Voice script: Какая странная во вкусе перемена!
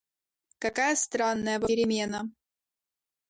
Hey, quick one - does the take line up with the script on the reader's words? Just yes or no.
no